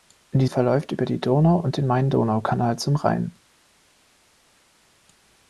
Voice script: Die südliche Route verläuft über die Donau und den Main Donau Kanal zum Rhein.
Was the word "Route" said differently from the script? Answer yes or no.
yes